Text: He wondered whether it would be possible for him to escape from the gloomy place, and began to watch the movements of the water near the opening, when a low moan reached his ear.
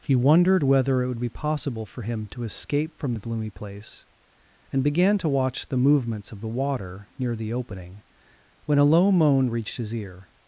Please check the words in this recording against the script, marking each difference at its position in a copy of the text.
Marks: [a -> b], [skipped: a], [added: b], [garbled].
He wondered whether it would be possible for him to escape from the gloomy place, and began to watch the movements of the water near the opening, when a low moan reached his ear.